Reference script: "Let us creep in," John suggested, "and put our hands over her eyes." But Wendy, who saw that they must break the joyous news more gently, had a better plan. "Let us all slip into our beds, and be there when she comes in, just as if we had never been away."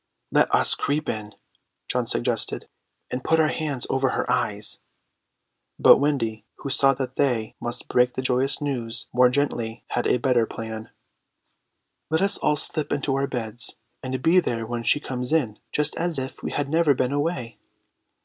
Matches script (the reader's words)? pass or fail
pass